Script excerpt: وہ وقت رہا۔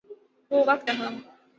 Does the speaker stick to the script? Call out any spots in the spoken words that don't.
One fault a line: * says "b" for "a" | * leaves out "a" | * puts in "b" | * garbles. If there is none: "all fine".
all fine